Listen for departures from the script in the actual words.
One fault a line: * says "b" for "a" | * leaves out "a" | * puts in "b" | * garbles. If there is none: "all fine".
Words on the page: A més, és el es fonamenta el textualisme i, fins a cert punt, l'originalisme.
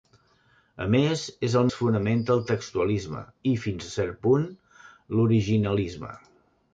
all fine